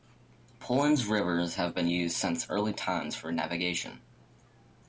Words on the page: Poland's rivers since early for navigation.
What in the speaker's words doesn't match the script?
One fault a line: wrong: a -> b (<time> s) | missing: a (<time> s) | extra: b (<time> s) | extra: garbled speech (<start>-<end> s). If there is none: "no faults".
extra: have been used (1.6 s)
extra: times (2.7 s)